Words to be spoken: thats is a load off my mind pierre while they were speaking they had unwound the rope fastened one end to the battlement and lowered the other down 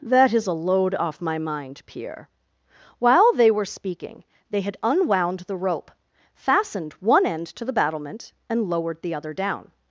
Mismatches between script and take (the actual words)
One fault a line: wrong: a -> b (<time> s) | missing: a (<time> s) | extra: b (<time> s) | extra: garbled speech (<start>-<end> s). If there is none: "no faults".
wrong: thats -> that (0.0 s)